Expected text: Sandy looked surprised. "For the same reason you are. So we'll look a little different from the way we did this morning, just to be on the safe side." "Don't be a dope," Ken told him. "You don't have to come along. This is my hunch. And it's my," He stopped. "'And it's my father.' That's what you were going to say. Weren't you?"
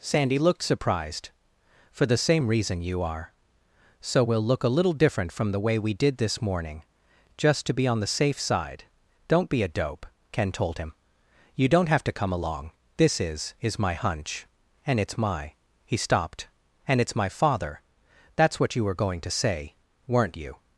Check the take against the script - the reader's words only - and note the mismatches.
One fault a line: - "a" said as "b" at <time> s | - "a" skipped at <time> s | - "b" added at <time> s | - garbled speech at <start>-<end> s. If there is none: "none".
- "is" added at 13.6 s